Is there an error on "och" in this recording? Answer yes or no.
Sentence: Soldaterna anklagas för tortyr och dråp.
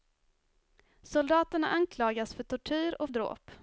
no